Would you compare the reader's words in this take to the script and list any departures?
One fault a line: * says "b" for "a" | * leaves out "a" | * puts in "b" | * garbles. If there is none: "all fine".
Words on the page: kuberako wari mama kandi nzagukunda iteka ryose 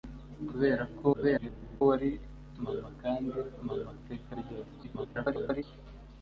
* garbles
* says "mama" for "nzagukunda"
* garbles